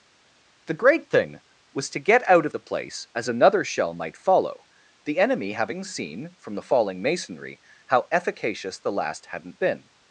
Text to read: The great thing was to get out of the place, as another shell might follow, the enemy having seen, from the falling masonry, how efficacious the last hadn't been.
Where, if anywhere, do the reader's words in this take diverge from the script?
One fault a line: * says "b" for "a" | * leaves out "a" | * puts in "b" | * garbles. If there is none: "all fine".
all fine